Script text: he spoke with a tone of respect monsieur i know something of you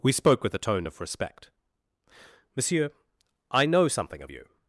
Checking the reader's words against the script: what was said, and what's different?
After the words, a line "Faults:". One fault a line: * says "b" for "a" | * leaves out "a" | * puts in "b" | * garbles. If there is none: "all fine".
we spoke with a tone of respect monsieur i know something of you
Faults:
* says "we" for "he"